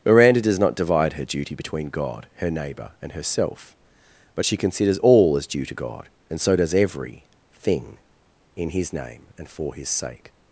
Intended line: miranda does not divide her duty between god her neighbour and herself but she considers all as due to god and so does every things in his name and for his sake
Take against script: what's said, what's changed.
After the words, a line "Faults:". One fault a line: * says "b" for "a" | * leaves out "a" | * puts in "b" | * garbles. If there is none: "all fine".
miranda does not divide her duty between god her neighbour and herself but she considers all as due to god and so does every thing in his name and for his sake
Faults:
* says "thing" for "things"